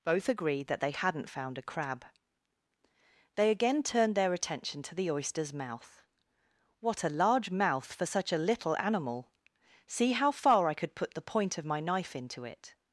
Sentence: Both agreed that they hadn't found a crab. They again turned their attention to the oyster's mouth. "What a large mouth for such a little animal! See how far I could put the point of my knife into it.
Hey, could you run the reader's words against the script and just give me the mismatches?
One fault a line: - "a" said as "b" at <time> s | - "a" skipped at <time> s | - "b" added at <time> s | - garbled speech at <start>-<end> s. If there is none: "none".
none